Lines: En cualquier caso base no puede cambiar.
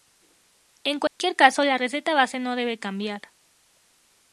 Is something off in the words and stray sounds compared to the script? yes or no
yes